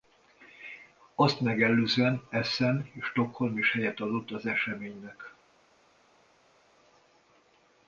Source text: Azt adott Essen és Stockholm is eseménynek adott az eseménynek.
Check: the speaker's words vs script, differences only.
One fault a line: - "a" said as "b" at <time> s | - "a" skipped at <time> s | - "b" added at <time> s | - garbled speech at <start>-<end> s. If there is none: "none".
- "adott" said as "megelőzően" at 1.4 s
- "eseménynek" said as "helyet" at 3.7 s